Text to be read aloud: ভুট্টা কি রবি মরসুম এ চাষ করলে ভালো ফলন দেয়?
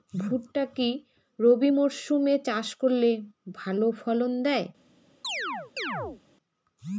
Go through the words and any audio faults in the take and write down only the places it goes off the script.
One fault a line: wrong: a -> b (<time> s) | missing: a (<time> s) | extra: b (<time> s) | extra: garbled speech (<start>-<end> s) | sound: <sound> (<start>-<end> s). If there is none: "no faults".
sound: chirp (5.2-6.2 s)